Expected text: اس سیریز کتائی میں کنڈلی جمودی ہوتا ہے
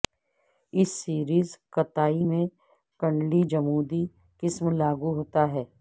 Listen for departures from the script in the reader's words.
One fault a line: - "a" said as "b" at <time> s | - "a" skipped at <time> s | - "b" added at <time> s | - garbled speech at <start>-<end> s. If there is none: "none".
- "قسم لاگو" added at 4.4 s